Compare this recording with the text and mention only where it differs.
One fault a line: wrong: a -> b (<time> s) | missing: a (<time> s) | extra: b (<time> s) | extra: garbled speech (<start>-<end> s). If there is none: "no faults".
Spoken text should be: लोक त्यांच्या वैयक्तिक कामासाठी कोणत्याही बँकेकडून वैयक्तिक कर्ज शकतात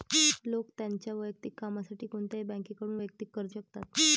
no faults